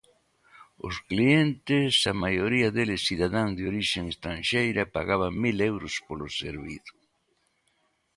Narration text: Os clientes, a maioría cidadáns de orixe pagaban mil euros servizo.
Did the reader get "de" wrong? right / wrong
right